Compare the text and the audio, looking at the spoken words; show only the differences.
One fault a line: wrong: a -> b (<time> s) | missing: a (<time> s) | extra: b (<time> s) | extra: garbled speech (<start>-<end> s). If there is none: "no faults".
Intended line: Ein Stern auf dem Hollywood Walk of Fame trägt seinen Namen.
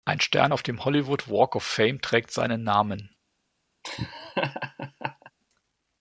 no faults